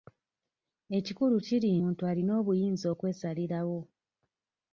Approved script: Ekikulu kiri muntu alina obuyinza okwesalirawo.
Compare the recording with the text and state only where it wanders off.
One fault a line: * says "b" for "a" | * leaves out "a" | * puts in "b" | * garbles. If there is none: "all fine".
all fine